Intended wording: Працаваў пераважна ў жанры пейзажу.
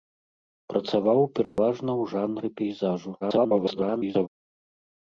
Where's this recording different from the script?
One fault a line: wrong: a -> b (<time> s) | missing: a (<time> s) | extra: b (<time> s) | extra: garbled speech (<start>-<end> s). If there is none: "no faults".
extra: garbled speech (3.2-4.3 s)